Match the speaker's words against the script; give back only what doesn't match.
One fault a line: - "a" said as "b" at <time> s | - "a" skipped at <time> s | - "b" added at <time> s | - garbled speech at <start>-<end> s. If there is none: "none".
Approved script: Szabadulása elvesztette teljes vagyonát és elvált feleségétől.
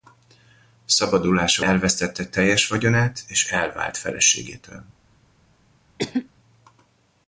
none